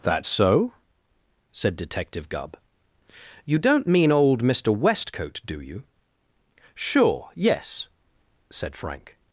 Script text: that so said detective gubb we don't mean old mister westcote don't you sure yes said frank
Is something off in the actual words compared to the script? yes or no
yes